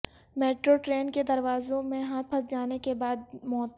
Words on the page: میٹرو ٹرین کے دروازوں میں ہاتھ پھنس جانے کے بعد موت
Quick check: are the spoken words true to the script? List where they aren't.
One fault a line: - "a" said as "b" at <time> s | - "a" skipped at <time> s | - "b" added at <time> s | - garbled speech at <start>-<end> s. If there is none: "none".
none